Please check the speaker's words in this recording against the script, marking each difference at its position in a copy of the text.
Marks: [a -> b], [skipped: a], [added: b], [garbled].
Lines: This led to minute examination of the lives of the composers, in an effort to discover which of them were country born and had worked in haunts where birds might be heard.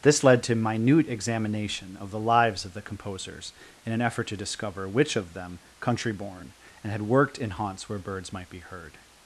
This led to minute examination of the lives of the composers, in an effort to discover which of them [skipped: were] country born and had worked in haunts where birds might be heard.